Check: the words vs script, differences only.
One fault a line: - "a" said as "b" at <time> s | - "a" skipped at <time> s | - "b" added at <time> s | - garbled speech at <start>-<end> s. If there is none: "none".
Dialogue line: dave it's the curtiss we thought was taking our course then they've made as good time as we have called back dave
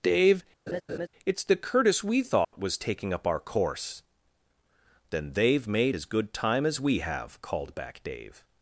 - "up" added at 3.1 s